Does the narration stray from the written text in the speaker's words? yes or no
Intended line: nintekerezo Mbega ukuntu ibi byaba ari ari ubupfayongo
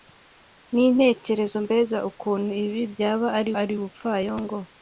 no